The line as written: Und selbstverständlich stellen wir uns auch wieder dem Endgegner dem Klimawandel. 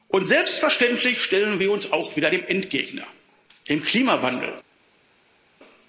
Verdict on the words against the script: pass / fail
pass